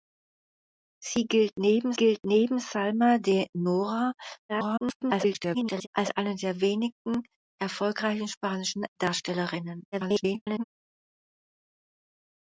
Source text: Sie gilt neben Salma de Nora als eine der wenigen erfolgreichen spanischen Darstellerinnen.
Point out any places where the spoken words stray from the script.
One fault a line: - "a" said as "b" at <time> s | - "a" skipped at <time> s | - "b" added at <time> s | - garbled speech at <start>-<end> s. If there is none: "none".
- "gilt neben" added at 1.9 s
- garbled speech at 4.5-5.9 s
- garbled speech at 9.9-10.6 s